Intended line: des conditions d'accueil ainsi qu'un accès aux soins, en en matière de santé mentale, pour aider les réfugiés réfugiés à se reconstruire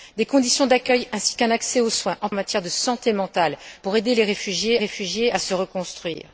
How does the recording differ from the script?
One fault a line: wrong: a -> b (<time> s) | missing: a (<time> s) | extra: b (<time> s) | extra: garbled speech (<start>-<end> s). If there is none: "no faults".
no faults